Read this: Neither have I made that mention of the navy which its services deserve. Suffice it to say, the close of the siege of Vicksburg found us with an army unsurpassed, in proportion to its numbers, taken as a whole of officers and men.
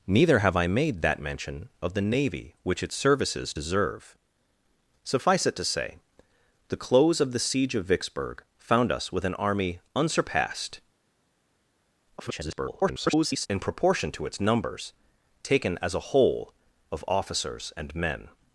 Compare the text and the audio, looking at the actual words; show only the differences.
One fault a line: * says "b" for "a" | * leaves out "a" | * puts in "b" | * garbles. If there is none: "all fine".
* garbles